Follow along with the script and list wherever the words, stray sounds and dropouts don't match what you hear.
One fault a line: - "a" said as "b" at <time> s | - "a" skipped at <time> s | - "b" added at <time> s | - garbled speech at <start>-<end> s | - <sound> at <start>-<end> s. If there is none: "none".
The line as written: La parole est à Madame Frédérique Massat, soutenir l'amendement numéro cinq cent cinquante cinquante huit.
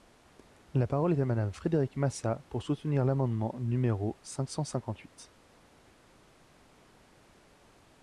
- "pour" added at 2.5 s
- "cinquante" skipped at 5.0 s